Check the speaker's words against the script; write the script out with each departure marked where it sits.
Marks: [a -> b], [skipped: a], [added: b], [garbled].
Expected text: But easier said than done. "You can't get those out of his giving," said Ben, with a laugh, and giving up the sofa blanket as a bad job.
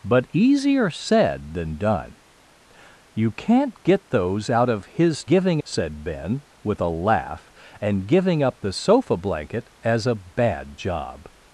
But easier said than done. "You can't get those out of his giving," said Ben, with a laugh, and giving up the sofa blanket as a bad job.